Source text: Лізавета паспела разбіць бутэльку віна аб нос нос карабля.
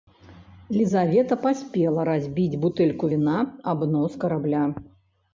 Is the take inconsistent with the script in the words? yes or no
yes